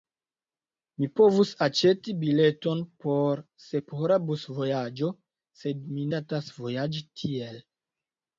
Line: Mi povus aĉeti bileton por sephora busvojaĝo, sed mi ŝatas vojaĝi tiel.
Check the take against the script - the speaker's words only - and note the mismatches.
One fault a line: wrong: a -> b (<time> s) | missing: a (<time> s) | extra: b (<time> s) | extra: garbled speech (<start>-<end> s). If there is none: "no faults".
no faults